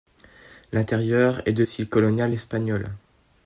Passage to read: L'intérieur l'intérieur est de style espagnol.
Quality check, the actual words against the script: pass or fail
fail